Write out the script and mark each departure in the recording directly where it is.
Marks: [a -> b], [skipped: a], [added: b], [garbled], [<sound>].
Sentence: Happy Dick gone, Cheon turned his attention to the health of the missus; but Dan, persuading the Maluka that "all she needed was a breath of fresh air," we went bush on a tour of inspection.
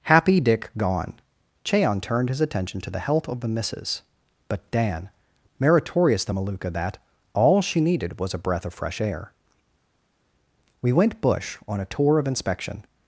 Happy Dick gone, Cheon turned his attention to the health of the missus; but Dan, [persuading -> meritorious] the Maluka that "all she needed was a breath of fresh air," we went bush on a tour of inspection.